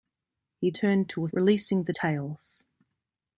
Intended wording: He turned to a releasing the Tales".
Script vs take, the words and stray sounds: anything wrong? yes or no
no